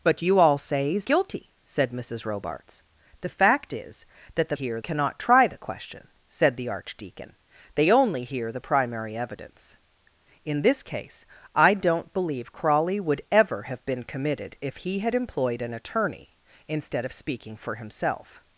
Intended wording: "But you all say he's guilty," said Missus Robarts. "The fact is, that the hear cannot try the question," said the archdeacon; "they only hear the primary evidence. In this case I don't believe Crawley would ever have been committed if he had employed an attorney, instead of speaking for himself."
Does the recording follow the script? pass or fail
pass